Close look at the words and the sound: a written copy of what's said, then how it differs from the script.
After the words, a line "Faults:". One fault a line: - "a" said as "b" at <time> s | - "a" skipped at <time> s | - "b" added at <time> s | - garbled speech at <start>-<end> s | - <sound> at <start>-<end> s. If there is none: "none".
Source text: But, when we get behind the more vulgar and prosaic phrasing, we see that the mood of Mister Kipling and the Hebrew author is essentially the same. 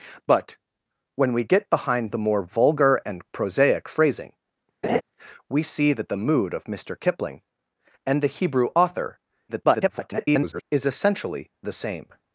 But, when we get behind the more vulgar and prosaic phrasing, we see that the mood of Mister Kipling and the Hebrew author [garbled] is essentially the same.
Faults:
- laugh at 4.8-5.0 s
- garbled speech at 9.5-10.6 s